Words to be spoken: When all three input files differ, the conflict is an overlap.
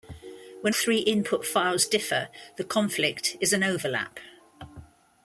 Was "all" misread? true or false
true